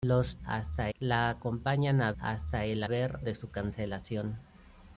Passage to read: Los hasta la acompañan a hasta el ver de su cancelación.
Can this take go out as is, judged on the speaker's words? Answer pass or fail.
pass